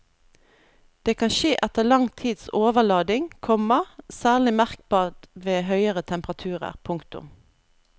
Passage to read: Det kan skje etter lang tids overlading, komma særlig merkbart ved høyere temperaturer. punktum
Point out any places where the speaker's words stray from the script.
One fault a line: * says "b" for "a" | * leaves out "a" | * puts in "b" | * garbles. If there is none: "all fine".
all fine